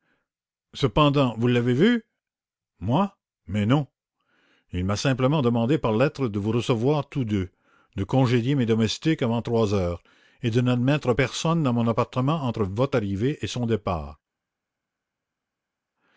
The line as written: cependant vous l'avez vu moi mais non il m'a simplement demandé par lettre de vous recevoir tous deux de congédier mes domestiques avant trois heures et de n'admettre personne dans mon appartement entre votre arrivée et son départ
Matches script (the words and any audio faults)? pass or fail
pass